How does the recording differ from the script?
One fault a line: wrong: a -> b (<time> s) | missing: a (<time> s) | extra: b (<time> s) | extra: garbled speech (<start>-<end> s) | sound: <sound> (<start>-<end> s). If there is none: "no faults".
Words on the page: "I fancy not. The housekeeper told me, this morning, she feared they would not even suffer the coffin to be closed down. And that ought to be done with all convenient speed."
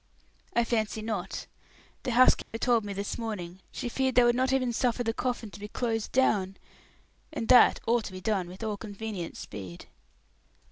sound: dropout (2.4-2.5 s)